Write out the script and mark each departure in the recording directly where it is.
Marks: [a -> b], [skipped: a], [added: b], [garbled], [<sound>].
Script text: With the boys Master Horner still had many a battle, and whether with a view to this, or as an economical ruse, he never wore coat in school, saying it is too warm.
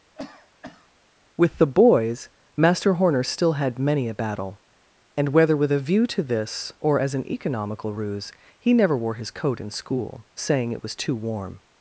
[cough] With the boys Master Horner still had many a battle, and whether with a view to this, or as an economical ruse, he never wore [added: his] coat in school, saying it [is -> was] too warm.